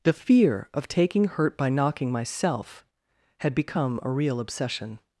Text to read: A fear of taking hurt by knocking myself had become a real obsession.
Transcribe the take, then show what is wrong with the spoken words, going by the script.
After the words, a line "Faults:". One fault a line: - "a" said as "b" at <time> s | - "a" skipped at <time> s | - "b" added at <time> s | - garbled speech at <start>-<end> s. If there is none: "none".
The fear of taking hurt by knocking myself had become a real obsession.
Faults:
- "A" said as "The" at 0.0 s